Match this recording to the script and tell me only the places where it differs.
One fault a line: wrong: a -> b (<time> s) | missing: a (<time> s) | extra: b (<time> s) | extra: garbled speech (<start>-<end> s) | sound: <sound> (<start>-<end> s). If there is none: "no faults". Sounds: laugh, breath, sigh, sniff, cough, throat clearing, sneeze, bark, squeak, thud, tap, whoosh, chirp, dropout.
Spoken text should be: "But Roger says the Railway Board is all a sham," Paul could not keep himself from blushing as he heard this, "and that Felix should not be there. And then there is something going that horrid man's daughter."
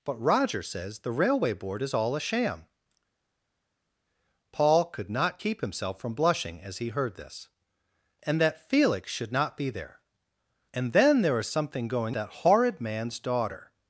no faults